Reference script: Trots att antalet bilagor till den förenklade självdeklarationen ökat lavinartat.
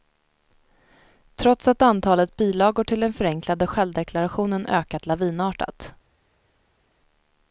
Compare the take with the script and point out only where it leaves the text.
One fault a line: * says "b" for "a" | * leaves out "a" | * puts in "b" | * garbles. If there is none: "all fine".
all fine